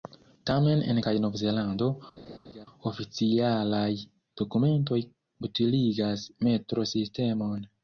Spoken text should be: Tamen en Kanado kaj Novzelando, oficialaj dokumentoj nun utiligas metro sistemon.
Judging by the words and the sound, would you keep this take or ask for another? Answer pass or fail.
fail